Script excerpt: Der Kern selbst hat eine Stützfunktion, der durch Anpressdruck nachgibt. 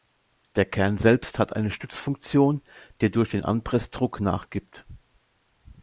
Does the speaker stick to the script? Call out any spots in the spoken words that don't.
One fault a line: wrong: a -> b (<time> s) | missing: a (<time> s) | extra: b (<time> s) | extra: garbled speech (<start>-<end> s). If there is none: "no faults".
extra: den (3.3 s)